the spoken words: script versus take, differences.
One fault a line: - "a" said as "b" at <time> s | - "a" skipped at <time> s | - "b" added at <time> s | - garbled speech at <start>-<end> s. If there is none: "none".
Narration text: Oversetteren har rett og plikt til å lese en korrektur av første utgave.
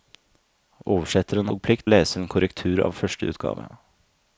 - "har rett" skipped at 1.5 s
- "til" skipped at 1.9 s